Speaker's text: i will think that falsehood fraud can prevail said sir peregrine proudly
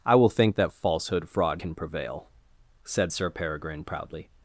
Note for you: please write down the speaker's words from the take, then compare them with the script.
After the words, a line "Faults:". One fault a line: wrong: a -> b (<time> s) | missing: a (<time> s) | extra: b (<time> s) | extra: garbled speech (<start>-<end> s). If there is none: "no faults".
i will think that falsehood fraud can prevail said sir peregrine proudly
Faults:
no faults